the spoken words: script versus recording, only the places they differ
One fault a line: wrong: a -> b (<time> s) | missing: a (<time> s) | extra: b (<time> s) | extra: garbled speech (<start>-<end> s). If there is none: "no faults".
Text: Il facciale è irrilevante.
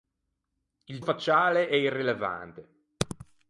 no faults